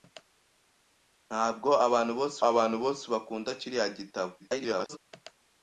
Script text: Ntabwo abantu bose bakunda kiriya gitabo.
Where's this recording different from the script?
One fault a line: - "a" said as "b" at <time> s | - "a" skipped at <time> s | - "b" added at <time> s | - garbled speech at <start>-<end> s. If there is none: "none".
- "abantu bose" added at 2.5 s
- garbled speech at 4.4-5.0 s